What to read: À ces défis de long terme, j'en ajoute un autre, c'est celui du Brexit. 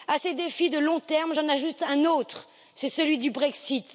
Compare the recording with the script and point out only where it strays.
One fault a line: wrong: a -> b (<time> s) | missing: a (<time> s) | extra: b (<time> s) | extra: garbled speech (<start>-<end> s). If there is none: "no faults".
no faults